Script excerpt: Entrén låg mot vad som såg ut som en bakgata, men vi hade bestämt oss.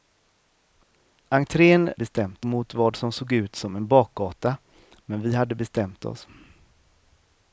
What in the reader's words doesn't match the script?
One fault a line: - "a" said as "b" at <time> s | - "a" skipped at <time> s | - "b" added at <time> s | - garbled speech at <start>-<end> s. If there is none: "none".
- "låg" said as "bestämt" at 1.9 s